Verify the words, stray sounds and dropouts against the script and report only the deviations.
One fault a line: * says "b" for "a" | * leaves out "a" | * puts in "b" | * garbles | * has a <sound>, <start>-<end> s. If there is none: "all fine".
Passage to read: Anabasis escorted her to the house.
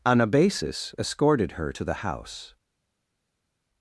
all fine